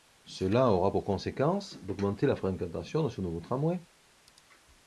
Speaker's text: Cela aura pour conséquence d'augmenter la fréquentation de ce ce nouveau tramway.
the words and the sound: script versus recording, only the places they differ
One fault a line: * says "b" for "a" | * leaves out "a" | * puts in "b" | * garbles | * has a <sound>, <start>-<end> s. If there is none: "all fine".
* leaves out "ce"